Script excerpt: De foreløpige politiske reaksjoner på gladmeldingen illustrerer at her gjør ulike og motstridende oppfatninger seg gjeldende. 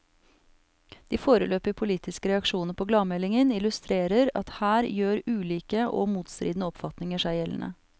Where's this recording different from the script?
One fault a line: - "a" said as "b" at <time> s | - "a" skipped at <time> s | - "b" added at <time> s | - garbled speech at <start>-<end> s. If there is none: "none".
none